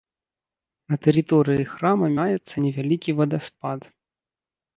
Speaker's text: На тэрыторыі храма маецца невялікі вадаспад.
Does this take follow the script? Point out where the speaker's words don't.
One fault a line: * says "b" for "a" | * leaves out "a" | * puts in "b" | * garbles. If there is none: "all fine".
all fine